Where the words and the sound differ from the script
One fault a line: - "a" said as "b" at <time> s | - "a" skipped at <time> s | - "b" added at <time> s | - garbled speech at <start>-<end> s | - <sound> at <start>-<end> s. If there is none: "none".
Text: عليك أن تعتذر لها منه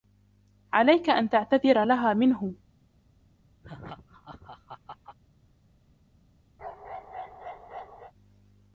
- laugh at 3.6-5.2 s
- bark at 6.6-8.1 s